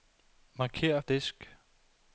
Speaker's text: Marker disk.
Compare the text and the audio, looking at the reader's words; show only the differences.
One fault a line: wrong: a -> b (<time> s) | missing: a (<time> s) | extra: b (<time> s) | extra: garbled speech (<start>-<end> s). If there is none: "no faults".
no faults